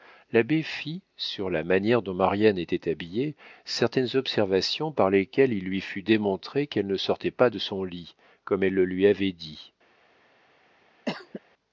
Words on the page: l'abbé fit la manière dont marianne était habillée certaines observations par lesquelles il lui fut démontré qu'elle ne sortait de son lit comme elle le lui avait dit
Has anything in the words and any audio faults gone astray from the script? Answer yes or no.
yes